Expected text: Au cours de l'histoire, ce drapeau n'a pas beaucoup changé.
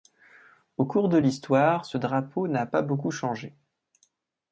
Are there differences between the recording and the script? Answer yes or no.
no